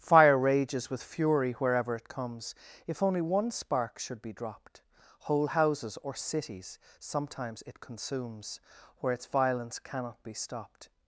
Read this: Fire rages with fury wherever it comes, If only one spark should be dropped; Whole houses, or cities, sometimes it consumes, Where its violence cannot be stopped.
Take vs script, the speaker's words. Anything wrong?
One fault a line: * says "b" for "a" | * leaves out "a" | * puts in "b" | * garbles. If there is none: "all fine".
all fine